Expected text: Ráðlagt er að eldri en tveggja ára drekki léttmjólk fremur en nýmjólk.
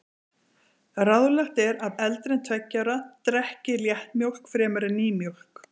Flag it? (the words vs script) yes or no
no